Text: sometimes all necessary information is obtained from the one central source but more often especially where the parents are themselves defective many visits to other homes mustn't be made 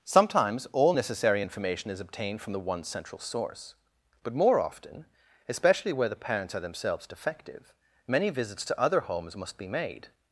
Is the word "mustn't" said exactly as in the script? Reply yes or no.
no